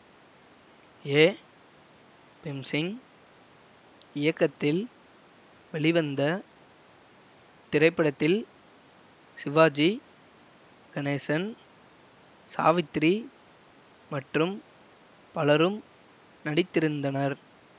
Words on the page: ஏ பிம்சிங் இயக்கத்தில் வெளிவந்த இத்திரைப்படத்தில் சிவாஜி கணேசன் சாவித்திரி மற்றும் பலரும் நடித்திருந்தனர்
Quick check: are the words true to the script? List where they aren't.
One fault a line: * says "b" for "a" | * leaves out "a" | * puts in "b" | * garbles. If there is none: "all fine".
all fine